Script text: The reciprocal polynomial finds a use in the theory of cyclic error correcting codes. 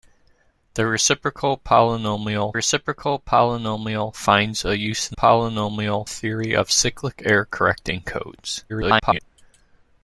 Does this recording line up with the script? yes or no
no